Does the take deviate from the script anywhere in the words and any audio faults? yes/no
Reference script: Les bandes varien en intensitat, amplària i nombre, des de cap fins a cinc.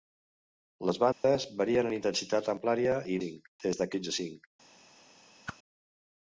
yes